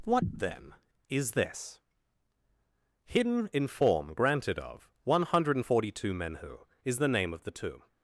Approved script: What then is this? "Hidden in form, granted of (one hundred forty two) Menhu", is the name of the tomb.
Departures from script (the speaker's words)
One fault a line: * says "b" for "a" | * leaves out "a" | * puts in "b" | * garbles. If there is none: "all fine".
all fine